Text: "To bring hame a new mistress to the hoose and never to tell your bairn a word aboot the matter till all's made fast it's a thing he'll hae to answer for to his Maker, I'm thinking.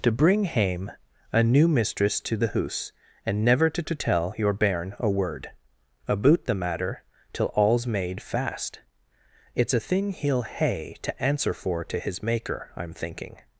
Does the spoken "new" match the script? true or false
true